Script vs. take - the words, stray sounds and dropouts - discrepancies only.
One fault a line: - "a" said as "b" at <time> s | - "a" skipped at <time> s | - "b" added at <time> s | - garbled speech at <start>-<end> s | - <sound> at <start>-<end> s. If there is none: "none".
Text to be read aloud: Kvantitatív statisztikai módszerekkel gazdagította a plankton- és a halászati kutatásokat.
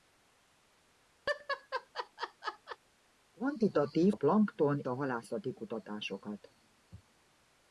- laugh at 1.3-2.8 s
- "statisztikai módszerekkel gazdagította" skipped at 4.1 s
- "és" skipped at 4.9 s